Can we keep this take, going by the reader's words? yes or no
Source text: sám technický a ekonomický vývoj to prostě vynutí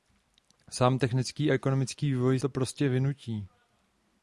yes